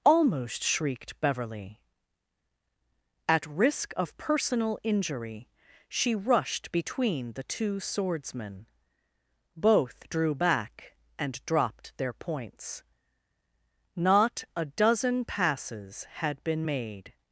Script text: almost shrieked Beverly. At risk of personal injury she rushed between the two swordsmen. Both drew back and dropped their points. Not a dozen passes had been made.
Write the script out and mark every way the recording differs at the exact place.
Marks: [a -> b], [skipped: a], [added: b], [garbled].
almost shrieked Beverly. At risk of personal injury she rushed between the two swordsmen. Both drew back and dropped their points. Not a dozen passes had been made.